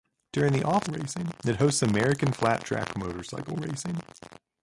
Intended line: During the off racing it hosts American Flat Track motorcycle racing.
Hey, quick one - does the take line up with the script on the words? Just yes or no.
yes